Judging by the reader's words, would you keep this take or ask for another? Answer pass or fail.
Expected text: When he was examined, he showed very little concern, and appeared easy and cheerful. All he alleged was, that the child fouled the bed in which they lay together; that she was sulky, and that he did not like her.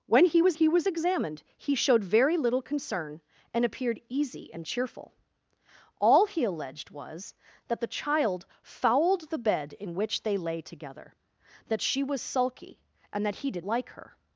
fail